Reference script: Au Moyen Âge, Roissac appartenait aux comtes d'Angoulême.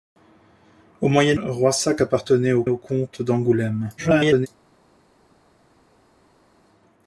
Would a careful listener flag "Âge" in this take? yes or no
yes